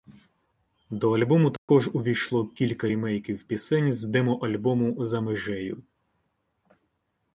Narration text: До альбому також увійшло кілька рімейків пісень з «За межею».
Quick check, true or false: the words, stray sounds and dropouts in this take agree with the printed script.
false